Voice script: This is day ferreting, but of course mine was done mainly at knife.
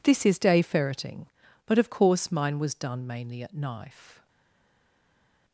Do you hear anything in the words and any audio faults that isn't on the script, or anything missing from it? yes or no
no